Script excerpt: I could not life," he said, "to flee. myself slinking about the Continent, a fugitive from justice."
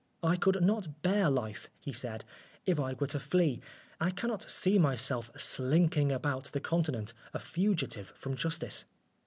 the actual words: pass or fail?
fail